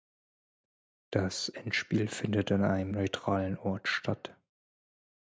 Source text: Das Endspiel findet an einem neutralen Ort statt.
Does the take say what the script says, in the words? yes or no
yes